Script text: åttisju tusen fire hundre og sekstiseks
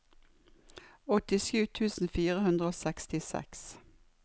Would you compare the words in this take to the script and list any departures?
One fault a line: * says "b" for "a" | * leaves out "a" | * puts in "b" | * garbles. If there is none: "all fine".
all fine